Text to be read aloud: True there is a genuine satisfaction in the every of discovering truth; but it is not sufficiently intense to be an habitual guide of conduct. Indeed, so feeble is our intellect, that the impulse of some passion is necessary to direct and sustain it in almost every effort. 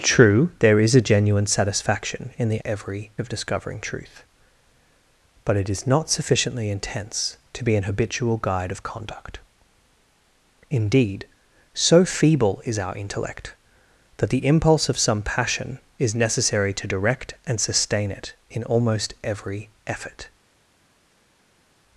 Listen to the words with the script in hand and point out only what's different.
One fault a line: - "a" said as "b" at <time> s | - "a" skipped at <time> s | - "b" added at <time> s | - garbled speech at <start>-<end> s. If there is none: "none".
none